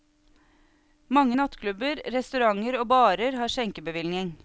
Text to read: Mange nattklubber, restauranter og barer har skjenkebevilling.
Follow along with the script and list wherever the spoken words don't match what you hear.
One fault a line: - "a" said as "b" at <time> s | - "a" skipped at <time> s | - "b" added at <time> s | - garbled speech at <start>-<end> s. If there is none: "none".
none